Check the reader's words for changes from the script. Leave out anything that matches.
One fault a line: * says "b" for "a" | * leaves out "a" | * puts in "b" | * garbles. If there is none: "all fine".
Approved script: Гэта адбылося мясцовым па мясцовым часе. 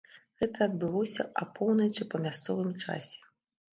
* says "апоўначы" for "мясцовым"